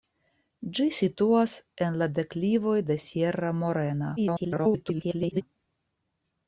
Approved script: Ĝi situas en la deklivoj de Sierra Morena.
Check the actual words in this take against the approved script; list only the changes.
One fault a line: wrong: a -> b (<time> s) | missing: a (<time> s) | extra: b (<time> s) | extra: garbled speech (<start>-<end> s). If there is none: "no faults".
extra: garbled speech (4.2-5.4 s)